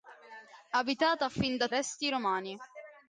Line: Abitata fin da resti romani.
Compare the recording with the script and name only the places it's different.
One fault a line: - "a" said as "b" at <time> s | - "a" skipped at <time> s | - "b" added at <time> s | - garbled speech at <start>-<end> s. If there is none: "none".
none